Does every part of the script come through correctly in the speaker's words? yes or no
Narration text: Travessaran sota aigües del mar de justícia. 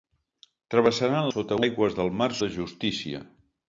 yes